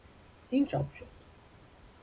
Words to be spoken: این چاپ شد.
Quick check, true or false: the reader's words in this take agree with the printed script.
true